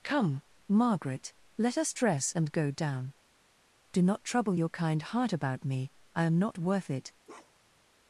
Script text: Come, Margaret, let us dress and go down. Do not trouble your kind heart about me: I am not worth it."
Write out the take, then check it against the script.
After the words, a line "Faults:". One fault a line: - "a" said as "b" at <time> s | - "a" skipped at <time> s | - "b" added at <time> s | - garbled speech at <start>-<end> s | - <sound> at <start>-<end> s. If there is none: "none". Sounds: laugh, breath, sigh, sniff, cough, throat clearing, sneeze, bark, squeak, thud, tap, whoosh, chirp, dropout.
Come, Margaret, let us dress and go down. Do not trouble your kind heart about me: I am not worth it."
Faults:
- bark at 7.2-7.8 s